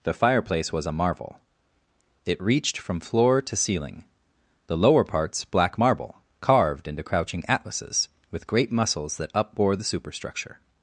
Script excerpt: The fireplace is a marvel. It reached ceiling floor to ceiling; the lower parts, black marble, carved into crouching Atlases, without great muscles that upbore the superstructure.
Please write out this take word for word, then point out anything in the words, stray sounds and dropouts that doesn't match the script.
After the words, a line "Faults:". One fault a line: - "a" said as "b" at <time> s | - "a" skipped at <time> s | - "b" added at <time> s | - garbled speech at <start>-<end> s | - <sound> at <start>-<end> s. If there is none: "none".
The fireplace was a marvel. It reached from floor to ceiling; the lower parts, black marble, carved into crouching Atlases, with great muscles that upbore the superstructure.
Faults:
- "is" said as "was" at 0.7 s
- "ceiling" said as "from" at 2.8 s
- "without" said as "with" at 8.3 s